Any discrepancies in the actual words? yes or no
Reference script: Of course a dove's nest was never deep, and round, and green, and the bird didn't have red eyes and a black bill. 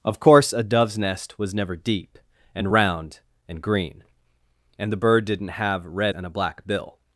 yes